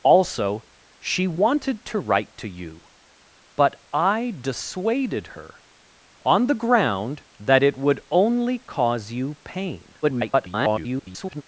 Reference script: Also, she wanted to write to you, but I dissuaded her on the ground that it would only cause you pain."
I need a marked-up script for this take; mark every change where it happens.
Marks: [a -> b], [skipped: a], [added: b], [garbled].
Also, she wanted to write to you, but I dissuaded her on the ground that it would only cause you pain." [garbled]